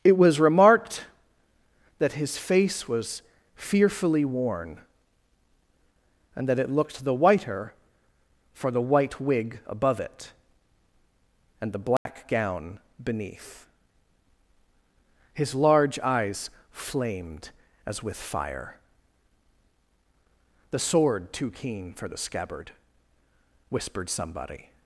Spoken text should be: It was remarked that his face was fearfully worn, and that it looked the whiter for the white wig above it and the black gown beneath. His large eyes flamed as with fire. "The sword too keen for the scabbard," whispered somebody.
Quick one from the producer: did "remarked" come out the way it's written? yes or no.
yes